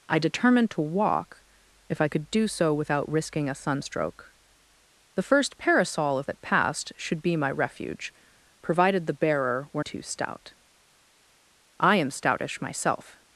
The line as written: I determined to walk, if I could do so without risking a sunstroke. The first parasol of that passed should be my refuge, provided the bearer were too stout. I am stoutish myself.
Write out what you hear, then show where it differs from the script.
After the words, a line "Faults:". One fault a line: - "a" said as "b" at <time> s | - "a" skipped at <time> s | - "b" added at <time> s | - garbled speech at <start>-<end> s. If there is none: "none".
I determined to walk, if I could do so without risking a sunstroke. The first parasol of that passed should be my refuge, provided the bearer were too stout. I am stoutish myself.
Faults:
none